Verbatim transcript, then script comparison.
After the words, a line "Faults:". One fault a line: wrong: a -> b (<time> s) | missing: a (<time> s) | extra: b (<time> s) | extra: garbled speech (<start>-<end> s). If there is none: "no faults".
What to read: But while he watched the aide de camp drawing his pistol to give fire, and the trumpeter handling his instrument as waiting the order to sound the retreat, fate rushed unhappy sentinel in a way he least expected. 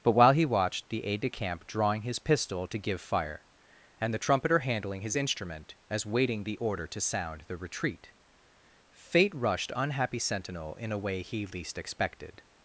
But while he watched the aide de camp drawing his pistol to give fire, and the trumpeter handling his instrument as waiting the order to sound the retreat, fate rushed unhappy sentinel in a way he least expected.
Faults:
no faults